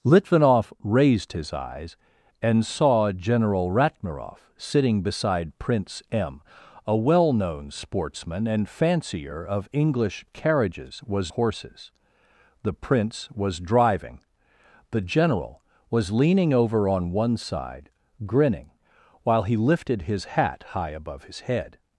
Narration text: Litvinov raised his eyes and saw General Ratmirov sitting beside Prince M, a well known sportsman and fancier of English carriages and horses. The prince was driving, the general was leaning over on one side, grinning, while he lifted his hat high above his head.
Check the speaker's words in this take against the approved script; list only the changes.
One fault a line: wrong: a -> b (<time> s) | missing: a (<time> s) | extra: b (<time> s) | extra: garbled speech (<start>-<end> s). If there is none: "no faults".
wrong: and -> was (11.0 s)